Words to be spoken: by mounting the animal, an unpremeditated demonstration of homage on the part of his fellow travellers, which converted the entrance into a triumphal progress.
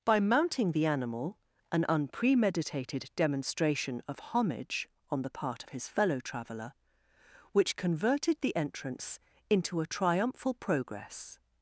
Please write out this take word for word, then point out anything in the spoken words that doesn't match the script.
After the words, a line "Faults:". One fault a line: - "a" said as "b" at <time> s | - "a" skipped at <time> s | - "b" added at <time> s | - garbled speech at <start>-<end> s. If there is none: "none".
by mounting the animal, an unpremeditated demonstration of homage on the part of his fellow traveller, which converted the entrance into a triumphal progress.
Faults:
- "travellers" said as "traveller" at 6.2 s